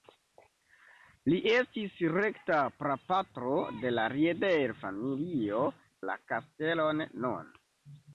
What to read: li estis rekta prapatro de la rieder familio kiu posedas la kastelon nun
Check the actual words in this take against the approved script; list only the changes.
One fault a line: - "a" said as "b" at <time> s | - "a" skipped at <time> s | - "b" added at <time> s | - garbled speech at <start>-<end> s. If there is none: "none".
- "kiu posedas" skipped at 5.6 s